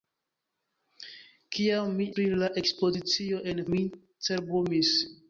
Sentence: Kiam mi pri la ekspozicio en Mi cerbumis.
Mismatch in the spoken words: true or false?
false